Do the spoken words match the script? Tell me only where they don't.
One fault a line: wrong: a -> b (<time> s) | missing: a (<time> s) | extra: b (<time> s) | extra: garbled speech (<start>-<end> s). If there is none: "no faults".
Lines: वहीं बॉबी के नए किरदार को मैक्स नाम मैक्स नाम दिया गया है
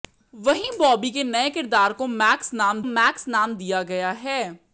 no faults